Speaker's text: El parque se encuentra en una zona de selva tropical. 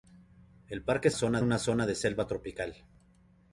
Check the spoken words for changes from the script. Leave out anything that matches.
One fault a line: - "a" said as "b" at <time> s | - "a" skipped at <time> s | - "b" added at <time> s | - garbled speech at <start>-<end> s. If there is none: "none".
- "encuentra" said as "zona" at 1.1 s